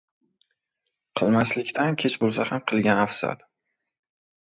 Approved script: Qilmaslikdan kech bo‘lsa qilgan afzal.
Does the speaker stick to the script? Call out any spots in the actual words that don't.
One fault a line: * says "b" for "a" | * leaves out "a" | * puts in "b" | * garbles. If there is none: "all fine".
* puts in "ham"